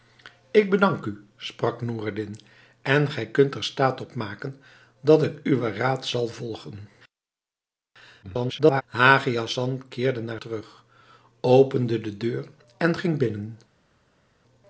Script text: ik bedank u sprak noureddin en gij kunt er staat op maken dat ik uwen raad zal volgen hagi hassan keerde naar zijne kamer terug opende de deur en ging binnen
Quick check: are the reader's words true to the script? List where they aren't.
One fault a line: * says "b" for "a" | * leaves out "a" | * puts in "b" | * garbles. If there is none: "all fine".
* garbles
* leaves out "zijne kamer"